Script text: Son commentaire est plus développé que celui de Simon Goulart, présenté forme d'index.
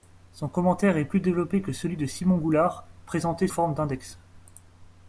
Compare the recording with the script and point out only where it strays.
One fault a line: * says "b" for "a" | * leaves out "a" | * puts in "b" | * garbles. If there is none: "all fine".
all fine